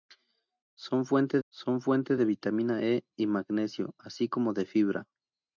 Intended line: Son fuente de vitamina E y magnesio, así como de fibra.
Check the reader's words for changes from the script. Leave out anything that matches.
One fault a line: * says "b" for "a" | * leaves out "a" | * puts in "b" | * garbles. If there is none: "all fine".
* puts in "son fuente"